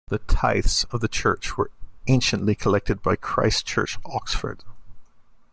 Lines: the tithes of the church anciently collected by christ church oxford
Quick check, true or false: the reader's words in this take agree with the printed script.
false